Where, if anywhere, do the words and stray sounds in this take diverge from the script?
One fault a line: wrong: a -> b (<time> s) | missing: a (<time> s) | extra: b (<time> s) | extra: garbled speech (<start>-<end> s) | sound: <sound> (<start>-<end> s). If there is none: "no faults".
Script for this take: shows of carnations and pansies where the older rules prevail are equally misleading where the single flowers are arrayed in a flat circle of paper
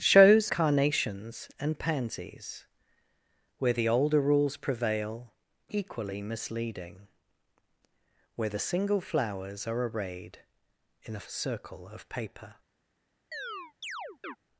missing: of (0.5 s)
missing: are (5.3 s)
missing: flat (11.2 s)
sound: chirp (13.3-14.4 s)